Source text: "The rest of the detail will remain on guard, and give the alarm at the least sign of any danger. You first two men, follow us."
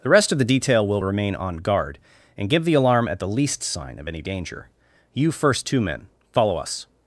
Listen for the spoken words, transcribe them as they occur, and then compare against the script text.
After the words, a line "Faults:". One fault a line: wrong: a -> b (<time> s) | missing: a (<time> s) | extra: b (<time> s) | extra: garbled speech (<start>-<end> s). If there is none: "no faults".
"The rest of the detail will remain on guard, and give the alarm at the least sign of any danger. You first two men, follow us."
Faults:
no faults